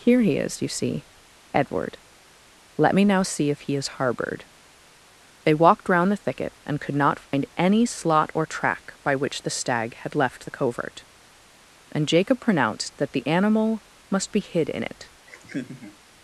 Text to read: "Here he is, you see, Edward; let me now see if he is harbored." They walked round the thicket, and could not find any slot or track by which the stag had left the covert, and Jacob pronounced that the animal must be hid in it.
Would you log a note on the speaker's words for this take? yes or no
no